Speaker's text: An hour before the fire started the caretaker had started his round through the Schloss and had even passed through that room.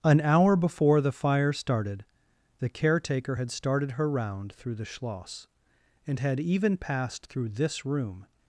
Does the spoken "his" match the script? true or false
false